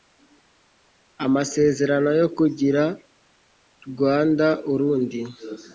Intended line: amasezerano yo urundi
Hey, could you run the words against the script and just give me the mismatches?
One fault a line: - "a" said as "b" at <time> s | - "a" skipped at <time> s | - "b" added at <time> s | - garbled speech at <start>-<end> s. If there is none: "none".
- "kugira rwanda" added at 2.4 s